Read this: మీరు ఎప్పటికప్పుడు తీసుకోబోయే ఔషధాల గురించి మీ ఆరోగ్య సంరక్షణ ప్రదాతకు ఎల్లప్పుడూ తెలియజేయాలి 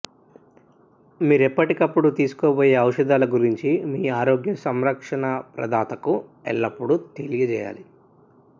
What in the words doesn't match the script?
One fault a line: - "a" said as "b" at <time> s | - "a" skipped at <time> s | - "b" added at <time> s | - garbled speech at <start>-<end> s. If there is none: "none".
none